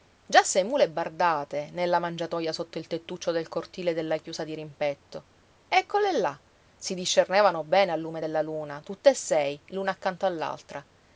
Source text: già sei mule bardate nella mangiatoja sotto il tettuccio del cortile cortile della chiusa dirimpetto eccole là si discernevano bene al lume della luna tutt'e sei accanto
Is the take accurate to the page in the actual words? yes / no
no